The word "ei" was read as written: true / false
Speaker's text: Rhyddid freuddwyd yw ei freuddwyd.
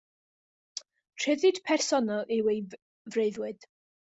true